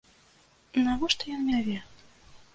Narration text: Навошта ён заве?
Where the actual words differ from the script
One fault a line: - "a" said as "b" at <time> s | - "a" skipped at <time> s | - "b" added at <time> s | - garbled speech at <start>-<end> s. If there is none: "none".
none